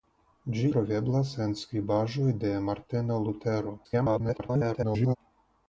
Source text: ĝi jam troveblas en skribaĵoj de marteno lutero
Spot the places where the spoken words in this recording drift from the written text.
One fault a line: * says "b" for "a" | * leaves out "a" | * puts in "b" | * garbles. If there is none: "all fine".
* leaves out "jam"
* garbles